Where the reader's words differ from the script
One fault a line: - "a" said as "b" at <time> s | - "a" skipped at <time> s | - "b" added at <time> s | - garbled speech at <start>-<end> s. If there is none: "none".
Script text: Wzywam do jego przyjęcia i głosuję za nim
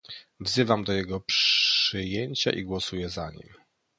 none